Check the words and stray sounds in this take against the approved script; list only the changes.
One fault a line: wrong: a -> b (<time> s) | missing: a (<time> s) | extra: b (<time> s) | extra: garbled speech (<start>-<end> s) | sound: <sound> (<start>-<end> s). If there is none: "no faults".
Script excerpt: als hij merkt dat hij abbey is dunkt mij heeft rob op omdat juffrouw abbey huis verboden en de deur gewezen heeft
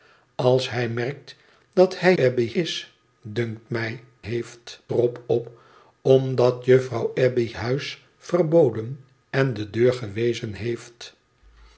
no faults